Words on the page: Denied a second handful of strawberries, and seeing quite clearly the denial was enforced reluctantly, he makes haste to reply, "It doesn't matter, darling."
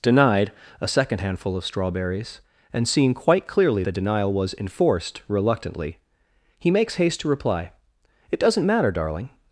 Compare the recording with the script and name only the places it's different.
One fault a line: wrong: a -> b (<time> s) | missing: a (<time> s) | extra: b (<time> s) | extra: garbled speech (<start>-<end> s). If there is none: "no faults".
no faults